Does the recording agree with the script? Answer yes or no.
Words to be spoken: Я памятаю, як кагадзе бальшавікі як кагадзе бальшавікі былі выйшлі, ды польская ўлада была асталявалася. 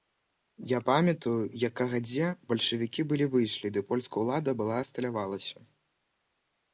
no